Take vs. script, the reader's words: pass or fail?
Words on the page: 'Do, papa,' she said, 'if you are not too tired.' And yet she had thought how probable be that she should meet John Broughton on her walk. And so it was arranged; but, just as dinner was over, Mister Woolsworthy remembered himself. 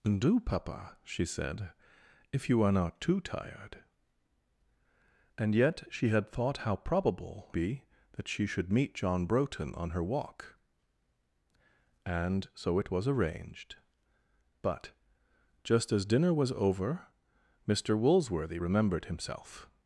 pass